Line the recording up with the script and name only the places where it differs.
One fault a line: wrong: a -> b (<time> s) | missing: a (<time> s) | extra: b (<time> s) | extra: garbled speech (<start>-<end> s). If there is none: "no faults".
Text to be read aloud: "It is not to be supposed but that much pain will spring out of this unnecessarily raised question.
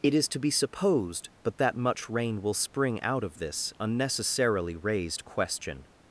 missing: not (0.3 s)
wrong: pain -> rain (2.1 s)